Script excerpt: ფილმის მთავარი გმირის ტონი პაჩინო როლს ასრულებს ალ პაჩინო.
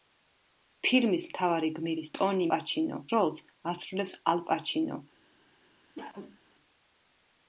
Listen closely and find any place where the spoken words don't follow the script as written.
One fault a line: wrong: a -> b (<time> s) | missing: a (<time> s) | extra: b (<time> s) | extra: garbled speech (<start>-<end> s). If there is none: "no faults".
no faults